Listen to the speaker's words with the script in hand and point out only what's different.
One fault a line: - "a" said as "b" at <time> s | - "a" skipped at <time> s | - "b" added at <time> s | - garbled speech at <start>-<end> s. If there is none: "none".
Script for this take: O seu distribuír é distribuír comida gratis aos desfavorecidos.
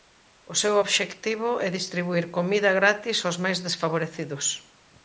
- "distribuír" said as "obxectivo" at 0.8 s
- "máis" added at 3.4 s